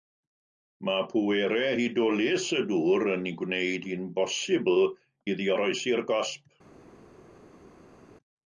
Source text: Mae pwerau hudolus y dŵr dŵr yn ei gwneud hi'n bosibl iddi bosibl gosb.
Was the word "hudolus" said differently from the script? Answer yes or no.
no